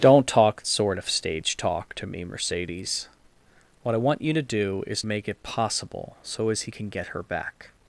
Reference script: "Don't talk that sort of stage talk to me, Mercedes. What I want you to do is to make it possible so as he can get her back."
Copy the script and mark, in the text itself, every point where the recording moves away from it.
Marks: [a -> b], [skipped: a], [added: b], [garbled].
"Don't talk [skipped: that] sort of stage talk to me, Mercedes. What I want you to do is [skipped: to] make it possible so as he can get her back."